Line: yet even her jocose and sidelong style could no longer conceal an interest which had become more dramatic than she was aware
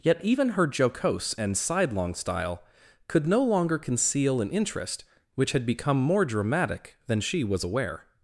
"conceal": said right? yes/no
yes